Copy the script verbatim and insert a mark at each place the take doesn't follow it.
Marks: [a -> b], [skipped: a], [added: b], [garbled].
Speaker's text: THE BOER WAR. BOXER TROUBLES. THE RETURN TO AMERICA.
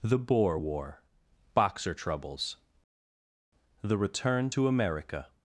THE BOER WAR. BOXER TROUBLES. THE RETURN TO AMERICA.